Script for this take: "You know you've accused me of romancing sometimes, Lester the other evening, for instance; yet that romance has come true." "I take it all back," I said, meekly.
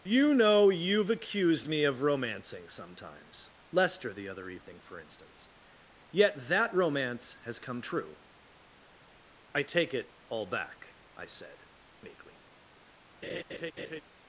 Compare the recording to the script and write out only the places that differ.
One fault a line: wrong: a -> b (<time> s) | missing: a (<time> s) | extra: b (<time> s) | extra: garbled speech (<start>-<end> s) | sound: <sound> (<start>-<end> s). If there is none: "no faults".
sound: laugh (13.2-14.0 s)